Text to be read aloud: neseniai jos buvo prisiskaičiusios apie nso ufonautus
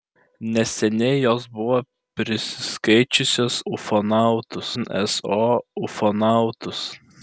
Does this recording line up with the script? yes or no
no